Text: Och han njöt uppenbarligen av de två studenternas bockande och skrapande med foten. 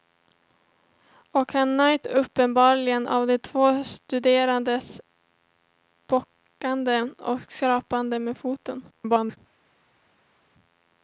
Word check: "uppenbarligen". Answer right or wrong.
right